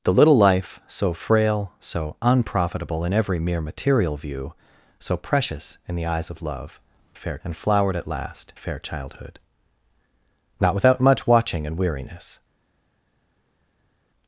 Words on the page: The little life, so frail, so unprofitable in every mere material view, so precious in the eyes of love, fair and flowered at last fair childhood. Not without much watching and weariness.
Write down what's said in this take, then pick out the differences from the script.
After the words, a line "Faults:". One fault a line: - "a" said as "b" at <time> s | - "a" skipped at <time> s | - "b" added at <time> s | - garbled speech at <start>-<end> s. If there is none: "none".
The little life, so frail, so unprofitable in every mere material view, so precious in the eyes of love, fair and flowered at last fair childhood. Not without much watching and weariness.
Faults:
none